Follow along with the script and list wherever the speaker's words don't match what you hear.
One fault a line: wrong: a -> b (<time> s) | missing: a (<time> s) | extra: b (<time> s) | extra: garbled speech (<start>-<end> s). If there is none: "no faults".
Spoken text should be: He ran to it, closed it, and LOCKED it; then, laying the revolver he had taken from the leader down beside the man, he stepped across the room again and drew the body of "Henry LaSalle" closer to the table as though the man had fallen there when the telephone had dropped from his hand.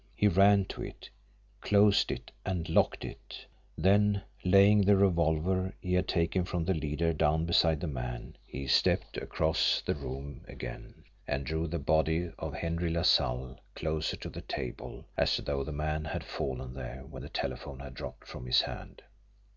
no faults